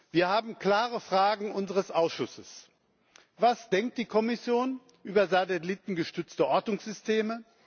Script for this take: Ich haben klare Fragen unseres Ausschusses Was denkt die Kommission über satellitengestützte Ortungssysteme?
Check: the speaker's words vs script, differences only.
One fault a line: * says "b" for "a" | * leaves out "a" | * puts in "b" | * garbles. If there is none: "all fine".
* says "Wir" for "Ich"